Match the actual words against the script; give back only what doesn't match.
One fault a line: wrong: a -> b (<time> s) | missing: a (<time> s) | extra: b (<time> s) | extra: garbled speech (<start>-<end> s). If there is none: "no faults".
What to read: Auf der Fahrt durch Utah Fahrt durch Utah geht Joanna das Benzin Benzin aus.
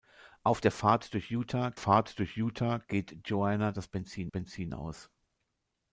no faults